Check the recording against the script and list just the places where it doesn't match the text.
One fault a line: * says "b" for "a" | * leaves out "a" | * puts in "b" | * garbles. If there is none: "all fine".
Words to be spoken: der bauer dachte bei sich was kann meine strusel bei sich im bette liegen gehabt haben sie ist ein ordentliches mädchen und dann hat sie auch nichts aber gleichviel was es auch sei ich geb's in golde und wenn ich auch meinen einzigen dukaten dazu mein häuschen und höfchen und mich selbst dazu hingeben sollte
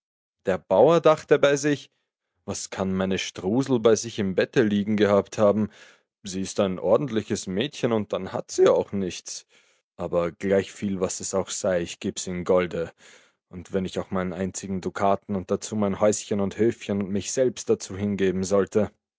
* puts in "und"